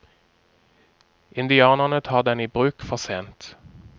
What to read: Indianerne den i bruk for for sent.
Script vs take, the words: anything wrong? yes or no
yes